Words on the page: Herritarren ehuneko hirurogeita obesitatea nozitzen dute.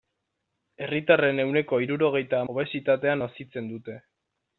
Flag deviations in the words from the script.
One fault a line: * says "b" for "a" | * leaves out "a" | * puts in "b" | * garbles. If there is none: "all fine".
all fine